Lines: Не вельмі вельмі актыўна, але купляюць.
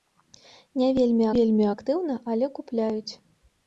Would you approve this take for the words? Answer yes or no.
yes